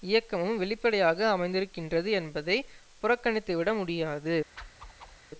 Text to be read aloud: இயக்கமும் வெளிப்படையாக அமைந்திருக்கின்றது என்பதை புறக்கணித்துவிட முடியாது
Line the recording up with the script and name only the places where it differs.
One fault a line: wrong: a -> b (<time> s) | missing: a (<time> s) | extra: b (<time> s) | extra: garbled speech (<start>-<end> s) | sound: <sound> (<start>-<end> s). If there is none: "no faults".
sound: whoosh (4.6-5.2 s)